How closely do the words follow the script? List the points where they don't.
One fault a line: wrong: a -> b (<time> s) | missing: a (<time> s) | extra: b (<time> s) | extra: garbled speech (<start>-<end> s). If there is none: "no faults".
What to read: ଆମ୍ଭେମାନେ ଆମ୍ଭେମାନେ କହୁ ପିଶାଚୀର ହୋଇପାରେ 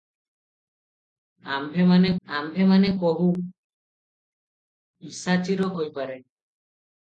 no faults